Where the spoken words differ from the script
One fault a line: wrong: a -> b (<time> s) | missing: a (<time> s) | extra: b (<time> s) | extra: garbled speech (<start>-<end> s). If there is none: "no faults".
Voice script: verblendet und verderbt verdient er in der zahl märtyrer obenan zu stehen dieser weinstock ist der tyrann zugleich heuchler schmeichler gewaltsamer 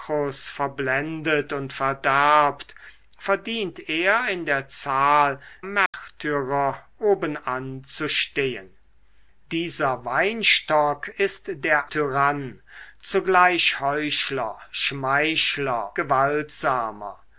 no faults